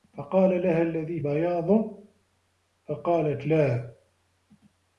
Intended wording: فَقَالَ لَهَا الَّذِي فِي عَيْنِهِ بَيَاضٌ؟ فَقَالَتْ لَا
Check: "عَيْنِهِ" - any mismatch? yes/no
yes